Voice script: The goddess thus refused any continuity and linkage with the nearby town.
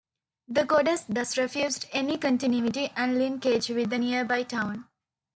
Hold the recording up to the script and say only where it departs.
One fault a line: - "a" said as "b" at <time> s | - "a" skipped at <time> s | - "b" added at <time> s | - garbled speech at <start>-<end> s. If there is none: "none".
none